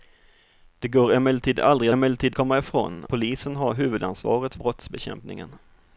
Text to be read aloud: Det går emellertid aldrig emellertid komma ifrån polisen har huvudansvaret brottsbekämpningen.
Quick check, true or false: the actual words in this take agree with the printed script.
true